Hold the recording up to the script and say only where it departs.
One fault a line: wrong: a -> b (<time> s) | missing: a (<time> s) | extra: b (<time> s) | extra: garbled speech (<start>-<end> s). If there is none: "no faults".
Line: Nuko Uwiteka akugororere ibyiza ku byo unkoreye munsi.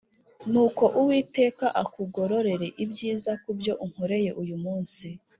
extra: uyu (4.4 s)